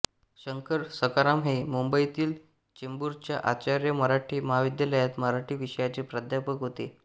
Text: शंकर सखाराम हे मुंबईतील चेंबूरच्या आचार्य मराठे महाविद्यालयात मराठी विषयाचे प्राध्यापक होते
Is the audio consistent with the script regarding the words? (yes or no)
yes